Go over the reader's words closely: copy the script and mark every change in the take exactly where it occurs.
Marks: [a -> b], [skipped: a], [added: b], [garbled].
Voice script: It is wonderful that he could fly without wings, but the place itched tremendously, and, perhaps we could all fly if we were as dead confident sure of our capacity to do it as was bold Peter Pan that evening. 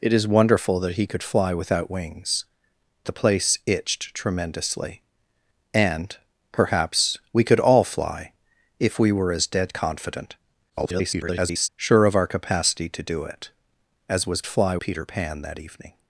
It is wonderful that he could fly without wings, [skipped: but] the place itched tremendously, and, perhaps we could all fly if we were as dead confident [garbled] sure of our capacity to do it as was [bold -> fly] Peter Pan that evening.